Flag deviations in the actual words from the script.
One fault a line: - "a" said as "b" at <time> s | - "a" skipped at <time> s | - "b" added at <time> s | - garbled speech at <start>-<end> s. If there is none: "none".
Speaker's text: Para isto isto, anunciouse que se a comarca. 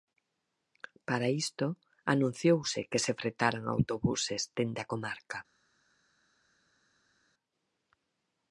- "isto" skipped at 1.6 s
- "fretaran autobuses dende" added at 3.2 s